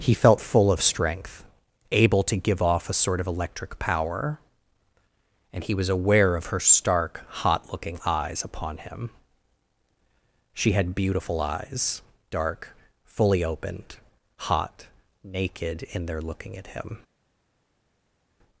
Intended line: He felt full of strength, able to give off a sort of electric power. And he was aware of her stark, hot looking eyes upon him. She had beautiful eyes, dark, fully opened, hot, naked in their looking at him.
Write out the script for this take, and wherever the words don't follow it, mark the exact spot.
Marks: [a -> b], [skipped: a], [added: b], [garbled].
He felt full of strength, able to give off a sort of electric power. And he was aware of her stark, hot looking eyes upon him. She had beautiful eyes, dark, fully opened, hot, naked in their looking at him.